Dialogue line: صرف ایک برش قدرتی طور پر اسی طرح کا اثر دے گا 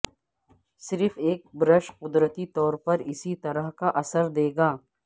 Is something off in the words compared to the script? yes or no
no